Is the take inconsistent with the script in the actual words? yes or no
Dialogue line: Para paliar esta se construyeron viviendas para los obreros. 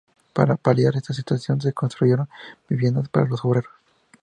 yes